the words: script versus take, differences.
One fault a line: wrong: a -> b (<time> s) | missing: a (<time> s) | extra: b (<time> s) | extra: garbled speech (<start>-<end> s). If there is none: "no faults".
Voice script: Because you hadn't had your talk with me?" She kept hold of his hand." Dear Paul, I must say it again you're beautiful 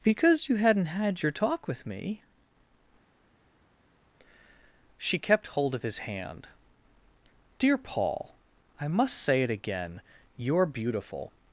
no faults